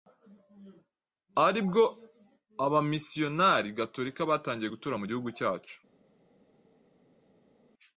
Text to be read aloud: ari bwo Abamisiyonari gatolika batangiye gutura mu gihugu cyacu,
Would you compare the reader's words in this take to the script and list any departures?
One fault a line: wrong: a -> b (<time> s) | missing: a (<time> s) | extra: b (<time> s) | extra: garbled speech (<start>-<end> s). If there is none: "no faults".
no faults